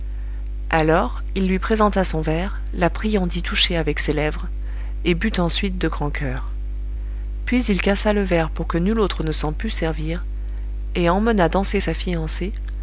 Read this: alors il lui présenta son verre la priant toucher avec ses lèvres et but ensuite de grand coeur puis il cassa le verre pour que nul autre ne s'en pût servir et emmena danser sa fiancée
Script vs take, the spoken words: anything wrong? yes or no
yes